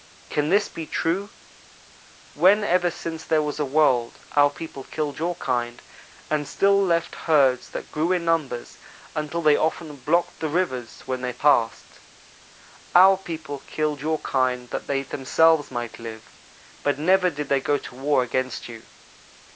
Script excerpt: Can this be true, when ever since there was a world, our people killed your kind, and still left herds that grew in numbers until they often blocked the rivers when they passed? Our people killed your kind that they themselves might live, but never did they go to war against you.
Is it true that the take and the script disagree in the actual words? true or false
false